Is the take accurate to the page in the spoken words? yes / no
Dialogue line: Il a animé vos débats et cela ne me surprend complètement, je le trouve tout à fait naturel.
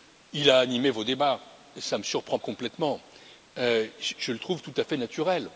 yes